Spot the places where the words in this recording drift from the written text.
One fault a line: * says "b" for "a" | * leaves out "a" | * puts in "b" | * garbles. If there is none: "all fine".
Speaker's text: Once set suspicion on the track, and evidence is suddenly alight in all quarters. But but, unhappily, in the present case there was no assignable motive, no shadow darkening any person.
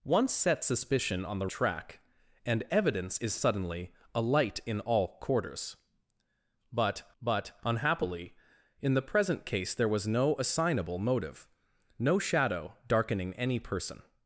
all fine